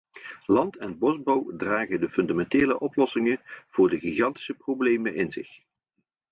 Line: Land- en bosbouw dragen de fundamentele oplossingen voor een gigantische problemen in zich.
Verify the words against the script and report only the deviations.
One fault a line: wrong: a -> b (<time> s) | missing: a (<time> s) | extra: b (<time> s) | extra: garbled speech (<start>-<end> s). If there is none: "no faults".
wrong: een -> de (3.9 s)